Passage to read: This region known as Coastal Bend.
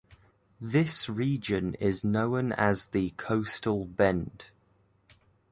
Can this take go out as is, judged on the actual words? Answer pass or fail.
fail